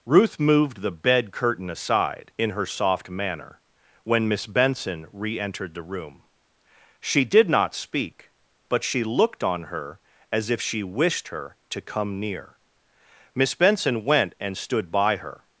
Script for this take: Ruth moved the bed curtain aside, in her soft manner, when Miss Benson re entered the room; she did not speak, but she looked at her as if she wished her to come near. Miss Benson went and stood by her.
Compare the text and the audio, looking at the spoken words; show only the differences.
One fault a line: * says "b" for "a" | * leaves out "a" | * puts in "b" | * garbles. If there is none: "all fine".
* says "on" for "at"